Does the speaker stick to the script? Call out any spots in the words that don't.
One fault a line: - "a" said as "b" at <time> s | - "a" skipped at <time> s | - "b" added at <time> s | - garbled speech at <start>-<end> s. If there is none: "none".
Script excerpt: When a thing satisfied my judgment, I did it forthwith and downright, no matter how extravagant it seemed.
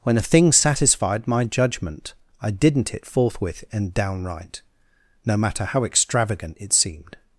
- "did" said as "didn't" at 2.5 s